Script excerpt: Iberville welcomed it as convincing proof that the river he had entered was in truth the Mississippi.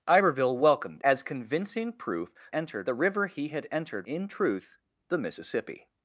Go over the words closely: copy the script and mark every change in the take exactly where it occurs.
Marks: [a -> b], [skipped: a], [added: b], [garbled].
Iberville welcomed [skipped: it] as convincing proof [that -> entered] the river he had entered [skipped: was] in truth the Mississippi.